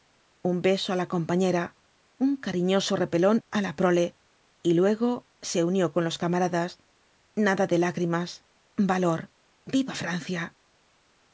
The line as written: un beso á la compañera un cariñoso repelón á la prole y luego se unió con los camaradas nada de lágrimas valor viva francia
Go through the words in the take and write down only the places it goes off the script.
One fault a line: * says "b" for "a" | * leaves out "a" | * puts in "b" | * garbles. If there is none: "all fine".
all fine